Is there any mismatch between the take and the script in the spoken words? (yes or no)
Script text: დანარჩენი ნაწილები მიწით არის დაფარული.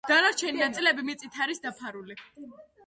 no